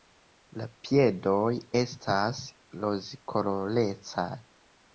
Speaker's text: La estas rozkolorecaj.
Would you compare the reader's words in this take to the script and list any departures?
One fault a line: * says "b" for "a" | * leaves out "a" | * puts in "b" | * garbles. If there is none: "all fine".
* puts in "piedoj"